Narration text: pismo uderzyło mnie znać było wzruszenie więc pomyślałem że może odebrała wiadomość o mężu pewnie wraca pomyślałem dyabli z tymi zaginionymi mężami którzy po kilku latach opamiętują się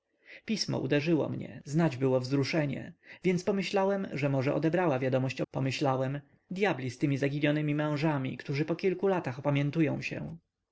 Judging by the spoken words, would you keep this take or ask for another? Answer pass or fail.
fail